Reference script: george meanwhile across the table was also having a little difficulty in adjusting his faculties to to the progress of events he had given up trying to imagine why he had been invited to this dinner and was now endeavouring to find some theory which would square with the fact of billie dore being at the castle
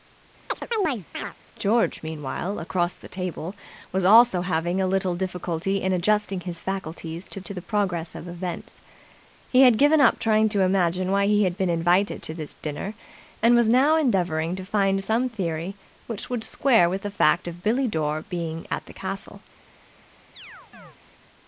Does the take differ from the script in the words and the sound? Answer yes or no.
yes